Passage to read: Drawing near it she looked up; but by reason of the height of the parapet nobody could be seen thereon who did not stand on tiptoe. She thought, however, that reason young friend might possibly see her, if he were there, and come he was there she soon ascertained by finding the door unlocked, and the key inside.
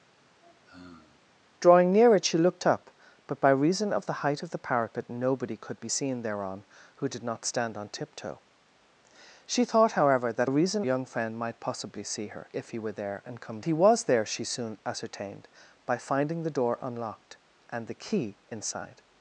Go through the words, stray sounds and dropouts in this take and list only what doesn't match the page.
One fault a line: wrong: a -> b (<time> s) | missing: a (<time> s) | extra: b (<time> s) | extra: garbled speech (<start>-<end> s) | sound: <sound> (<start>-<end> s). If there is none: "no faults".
sound: sigh (0.2-1.2 s)